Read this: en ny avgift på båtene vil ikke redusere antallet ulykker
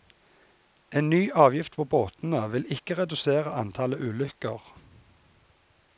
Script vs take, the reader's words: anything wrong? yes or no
no